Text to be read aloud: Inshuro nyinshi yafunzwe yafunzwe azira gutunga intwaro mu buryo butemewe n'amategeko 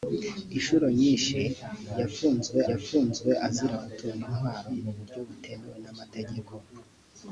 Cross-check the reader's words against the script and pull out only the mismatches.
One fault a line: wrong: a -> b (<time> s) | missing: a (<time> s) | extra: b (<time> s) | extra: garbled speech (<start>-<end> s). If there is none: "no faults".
no faults